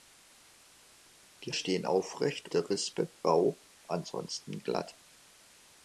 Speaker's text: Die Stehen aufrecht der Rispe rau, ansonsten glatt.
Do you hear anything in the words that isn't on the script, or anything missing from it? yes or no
no